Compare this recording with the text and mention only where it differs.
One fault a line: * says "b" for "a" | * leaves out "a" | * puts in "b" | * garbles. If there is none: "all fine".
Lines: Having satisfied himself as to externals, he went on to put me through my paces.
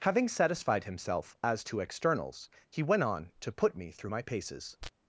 all fine